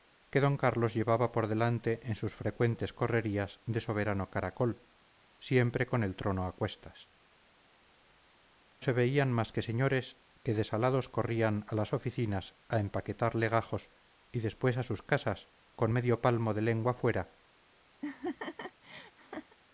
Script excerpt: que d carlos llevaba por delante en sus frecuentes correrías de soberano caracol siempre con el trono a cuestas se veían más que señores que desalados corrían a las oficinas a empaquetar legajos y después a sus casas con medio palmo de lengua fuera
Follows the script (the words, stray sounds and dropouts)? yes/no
no